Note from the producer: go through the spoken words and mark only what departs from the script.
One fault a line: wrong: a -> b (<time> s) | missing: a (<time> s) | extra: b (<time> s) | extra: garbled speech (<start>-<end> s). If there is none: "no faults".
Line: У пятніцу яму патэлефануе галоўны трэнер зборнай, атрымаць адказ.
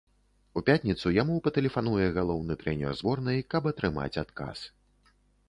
extra: каб (3.6 s)